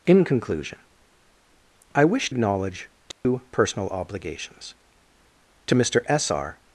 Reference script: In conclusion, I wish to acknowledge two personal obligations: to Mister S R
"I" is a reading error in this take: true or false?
false